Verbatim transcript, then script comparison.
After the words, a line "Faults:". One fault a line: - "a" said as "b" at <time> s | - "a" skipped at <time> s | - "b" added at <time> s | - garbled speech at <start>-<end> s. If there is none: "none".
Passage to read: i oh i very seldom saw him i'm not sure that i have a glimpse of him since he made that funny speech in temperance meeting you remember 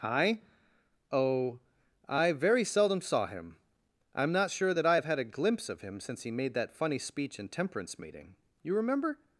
i oh i very seldom saw him i'm not sure that i have had a glimpse of him since he made that funny speech in temperance meeting you remember
Faults:
- "had" added at 5.0 s